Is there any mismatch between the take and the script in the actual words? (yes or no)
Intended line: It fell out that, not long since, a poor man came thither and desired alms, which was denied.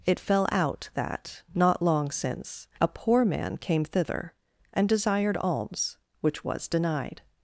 no